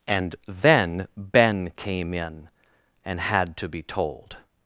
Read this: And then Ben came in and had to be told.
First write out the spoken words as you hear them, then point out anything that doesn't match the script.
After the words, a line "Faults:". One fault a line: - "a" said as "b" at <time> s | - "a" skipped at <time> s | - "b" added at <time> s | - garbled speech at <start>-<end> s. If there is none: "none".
And then Ben came in and had to be told.
Faults:
none